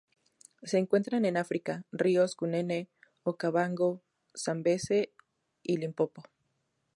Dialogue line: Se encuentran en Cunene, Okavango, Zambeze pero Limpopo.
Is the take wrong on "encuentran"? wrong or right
right